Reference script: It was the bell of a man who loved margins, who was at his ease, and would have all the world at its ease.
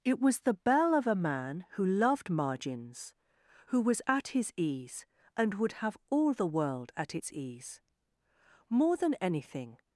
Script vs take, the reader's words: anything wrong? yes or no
yes